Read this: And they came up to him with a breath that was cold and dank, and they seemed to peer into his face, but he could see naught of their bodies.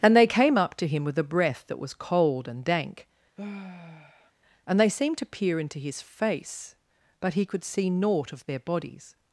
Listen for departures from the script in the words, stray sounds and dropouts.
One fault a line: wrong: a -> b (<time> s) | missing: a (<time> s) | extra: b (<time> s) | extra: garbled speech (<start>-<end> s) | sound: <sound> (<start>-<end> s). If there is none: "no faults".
sound: sigh (3.4-4.3 s)